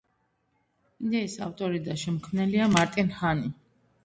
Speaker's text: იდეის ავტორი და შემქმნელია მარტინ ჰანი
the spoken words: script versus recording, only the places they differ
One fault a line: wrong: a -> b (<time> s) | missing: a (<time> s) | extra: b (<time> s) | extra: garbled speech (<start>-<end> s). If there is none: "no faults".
no faults